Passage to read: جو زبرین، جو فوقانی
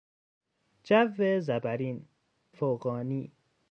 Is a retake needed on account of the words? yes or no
yes